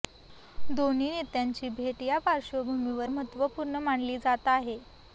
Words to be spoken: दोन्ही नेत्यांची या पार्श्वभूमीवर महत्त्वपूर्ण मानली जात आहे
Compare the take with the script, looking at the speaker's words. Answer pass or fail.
fail